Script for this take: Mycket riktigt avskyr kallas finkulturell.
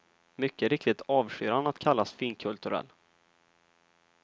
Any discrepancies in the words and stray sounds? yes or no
yes